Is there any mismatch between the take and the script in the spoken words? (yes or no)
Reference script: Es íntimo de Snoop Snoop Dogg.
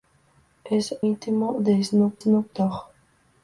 no